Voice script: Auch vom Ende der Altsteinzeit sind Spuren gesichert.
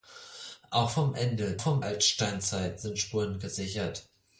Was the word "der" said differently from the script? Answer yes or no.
yes